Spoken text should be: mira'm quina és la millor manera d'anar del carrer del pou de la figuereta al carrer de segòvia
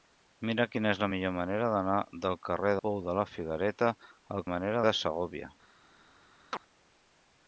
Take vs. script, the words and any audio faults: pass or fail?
fail